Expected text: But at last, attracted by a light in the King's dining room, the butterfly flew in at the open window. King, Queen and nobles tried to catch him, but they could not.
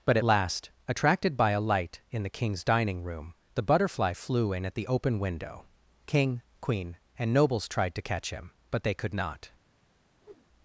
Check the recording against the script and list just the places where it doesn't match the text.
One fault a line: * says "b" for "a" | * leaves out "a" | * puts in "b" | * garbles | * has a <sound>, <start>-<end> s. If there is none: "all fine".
* has a whoosh, 10.2-10.5 s